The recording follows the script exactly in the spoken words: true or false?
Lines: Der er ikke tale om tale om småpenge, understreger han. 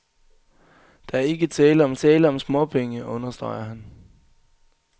true